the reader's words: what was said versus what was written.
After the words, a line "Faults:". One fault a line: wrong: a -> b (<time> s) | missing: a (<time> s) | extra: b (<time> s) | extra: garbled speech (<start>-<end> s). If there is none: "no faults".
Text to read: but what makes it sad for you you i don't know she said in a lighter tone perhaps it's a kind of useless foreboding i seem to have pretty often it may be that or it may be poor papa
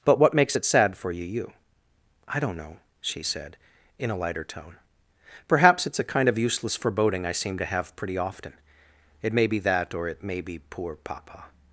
but what makes it sad for you you i don't know she said in a lighter tone perhaps it's a kind of useless foreboding i seem to have pretty often it may be that or it may be poor papa
Faults:
no faults